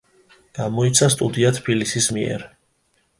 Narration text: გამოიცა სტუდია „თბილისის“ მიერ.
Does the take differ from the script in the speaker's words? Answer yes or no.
no